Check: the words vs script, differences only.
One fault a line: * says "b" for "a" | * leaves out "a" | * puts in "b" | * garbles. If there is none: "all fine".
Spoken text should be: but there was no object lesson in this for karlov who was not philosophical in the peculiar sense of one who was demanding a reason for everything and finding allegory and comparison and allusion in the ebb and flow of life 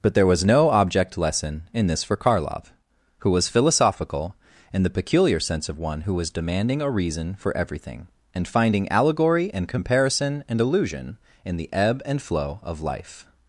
* leaves out "not"